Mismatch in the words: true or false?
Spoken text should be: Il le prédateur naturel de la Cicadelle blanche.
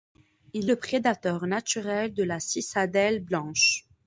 false